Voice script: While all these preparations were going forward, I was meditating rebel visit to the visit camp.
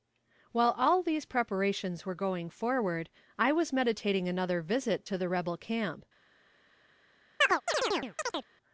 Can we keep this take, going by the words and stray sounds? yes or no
no